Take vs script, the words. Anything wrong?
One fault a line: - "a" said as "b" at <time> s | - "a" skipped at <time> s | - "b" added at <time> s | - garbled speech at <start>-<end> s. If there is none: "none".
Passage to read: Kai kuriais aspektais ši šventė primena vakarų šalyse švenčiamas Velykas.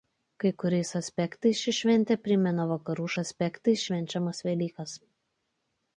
- "šalyse" said as "aspektais" at 3.2 s